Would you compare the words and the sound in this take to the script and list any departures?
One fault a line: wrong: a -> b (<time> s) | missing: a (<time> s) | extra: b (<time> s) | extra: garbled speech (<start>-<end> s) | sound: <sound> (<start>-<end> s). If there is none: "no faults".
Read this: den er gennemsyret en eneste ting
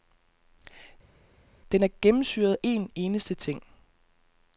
no faults